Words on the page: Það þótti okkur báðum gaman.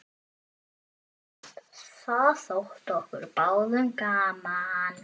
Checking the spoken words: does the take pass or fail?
pass